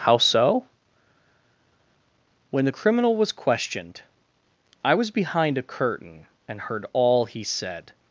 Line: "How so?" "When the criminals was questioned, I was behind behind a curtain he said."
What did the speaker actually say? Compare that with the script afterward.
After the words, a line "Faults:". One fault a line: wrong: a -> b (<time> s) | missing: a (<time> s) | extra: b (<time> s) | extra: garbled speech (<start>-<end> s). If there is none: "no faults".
"How so?" "When the criminal was questioned, I was behind a curtain and heard all he said."
Faults:
wrong: criminals -> criminal (2.7 s)
missing: behind (5.6 s)
extra: and heard all (6.5 s)